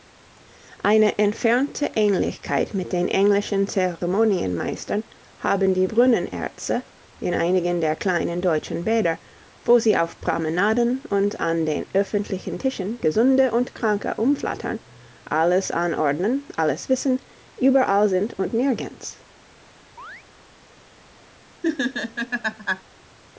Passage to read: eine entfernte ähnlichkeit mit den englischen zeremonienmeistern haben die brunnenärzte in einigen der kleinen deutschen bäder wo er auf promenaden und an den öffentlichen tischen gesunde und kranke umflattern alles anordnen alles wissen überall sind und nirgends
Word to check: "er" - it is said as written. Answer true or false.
false